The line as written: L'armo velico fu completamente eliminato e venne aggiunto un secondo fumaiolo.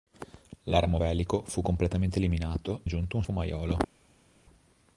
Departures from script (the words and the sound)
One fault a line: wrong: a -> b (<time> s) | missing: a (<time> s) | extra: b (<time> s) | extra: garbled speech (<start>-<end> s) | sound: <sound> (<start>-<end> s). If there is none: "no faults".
missing: e venne (2.8 s)
missing: secondo (3.3 s)